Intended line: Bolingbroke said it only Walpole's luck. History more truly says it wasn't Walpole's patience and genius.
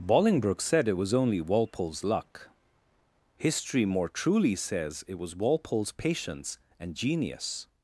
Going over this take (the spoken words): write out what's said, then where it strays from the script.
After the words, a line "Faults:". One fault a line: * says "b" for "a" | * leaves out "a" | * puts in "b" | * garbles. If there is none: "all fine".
Bolingbroke said it was only Walpole's luck. History more truly says it was Walpole's patience and genius.
Faults:
* puts in "was"
* says "was" for "wasn't"